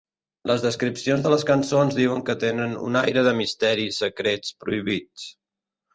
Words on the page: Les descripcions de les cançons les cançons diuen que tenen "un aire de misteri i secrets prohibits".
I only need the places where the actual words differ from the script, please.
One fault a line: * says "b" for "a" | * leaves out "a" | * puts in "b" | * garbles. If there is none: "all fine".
* leaves out "les cançons"